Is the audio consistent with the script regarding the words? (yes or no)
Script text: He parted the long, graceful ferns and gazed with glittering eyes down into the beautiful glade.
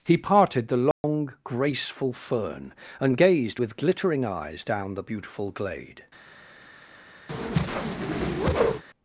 no